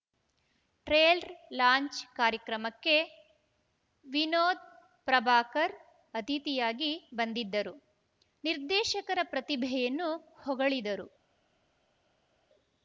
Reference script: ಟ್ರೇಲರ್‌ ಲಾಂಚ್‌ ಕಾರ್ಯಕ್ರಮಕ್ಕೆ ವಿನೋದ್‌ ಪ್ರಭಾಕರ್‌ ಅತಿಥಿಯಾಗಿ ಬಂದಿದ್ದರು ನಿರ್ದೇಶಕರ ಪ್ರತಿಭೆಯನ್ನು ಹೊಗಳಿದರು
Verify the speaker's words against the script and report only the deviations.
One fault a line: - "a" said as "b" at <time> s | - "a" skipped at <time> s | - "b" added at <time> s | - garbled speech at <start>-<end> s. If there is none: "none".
none